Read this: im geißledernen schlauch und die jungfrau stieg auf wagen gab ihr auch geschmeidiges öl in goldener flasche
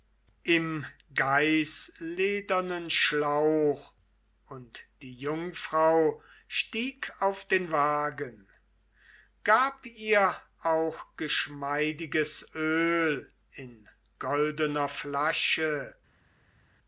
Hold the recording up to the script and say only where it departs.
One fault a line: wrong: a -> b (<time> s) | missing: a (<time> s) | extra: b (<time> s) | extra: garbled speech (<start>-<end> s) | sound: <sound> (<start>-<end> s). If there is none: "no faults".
extra: den (7.5 s)